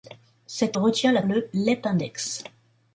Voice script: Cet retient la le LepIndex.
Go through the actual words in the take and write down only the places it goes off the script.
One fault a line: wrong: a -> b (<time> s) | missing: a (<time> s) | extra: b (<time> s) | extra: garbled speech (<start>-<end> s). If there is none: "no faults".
no faults